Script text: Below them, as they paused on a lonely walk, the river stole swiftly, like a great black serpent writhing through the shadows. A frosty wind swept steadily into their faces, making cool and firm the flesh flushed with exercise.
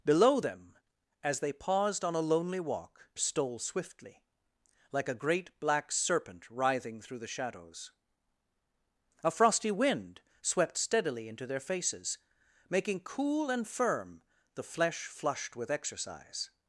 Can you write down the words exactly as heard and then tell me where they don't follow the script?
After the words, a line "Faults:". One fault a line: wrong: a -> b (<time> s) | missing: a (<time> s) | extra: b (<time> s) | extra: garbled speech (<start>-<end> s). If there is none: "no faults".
Below them, as they paused on a lonely walk, stole swiftly, like a great black serpent writhing through the shadows. A frosty wind swept steadily into their faces, making cool and firm the flesh flushed with exercise.
Faults:
missing: the river (3.1 s)